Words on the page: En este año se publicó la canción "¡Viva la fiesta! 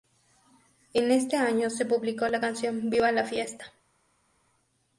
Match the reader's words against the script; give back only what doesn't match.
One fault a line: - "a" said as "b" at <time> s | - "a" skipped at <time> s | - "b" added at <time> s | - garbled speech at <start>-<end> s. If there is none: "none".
none